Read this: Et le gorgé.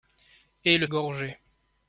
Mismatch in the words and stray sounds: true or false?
false